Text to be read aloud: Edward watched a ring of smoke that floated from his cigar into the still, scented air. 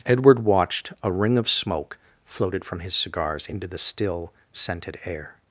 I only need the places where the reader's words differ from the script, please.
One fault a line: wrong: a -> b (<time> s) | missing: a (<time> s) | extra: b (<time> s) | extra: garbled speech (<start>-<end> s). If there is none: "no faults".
missing: that (2.0 s)
wrong: cigar -> cigars (3.0 s)